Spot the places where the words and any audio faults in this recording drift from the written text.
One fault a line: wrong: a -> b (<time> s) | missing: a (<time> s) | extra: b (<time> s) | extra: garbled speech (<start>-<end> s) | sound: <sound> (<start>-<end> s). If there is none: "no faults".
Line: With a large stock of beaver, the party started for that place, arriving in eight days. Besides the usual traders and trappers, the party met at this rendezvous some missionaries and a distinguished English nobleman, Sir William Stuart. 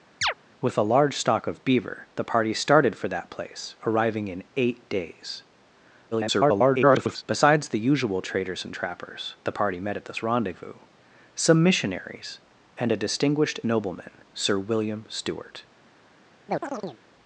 sound: chirp (0.2-0.3 s)
extra: garbled speech (6.1-7.2 s)
missing: English (13.6 s)
sound: chirp (16.5-17.0 s)